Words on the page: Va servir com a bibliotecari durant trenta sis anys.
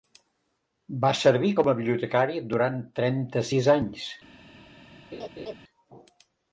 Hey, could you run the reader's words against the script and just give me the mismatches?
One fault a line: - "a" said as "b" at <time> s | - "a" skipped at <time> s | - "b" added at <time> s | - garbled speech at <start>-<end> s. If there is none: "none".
none